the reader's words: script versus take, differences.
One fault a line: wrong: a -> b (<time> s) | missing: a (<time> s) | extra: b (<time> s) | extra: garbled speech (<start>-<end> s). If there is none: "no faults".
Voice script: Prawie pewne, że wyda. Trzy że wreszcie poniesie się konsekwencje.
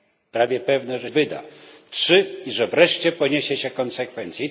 no faults